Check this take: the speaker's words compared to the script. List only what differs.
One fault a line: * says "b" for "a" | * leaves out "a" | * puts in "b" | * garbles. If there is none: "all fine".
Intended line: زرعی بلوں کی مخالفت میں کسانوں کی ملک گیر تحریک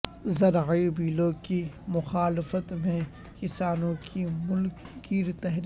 all fine